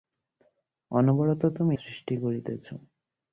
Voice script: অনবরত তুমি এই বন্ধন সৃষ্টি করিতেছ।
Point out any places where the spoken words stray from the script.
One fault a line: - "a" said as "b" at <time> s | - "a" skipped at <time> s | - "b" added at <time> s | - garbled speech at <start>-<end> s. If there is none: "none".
- "এই বন্ধন" skipped at 1.8 s